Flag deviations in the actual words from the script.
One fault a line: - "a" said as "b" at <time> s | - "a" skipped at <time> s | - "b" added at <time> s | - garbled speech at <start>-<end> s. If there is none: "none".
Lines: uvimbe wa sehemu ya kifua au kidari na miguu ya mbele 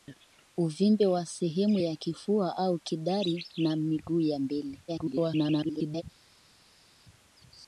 - garbled speech at 4.9-6.0 s